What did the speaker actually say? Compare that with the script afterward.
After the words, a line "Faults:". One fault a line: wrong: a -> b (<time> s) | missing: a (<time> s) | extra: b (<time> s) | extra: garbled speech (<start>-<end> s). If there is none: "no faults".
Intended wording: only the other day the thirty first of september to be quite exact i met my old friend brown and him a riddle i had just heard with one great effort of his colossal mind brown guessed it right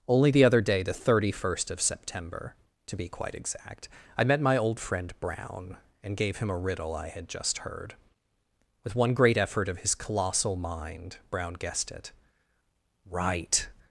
only the other day the thirty first of september to be quite exact i met my old friend brown and gave him a riddle i had just heard with one great effort of his colossal mind brown guessed it right
Faults:
extra: gave (6.2 s)